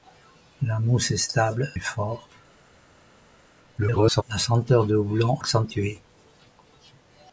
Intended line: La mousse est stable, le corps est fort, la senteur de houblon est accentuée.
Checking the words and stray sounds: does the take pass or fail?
fail